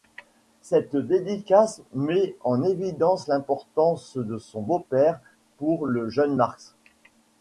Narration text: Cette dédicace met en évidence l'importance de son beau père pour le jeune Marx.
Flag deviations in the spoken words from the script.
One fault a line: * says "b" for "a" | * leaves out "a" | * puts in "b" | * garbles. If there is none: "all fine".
all fine